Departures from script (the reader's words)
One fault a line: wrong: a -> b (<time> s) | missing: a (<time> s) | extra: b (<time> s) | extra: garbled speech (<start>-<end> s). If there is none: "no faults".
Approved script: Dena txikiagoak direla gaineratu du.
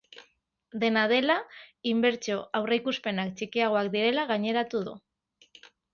extra: dela inbertsio aurreikuspenak (1.1 s)